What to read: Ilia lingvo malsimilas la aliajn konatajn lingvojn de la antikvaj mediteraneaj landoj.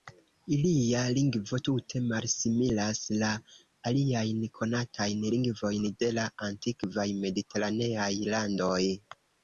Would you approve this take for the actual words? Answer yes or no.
no